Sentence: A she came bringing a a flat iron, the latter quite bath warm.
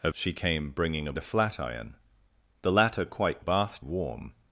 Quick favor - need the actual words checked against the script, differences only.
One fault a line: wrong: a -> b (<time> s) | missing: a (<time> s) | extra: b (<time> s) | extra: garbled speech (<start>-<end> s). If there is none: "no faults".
no faults